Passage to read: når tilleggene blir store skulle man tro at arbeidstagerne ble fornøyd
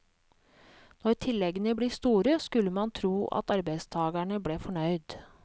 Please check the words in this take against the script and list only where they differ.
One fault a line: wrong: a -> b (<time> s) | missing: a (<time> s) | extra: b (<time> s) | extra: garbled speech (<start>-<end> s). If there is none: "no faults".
no faults